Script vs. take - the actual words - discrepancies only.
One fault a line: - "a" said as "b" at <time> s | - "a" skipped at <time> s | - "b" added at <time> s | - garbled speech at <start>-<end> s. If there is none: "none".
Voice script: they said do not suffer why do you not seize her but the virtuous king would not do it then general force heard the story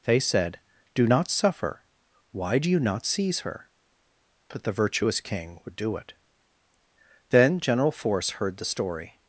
- "not" skipped at 5.8 s